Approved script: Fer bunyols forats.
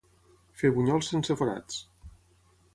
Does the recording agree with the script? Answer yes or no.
no